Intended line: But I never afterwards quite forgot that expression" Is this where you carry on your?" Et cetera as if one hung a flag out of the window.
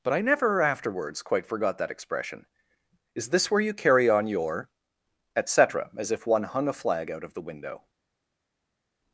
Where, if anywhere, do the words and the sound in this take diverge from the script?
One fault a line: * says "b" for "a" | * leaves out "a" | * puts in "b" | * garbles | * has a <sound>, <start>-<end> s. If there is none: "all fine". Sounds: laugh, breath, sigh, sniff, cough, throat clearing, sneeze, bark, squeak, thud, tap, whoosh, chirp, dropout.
all fine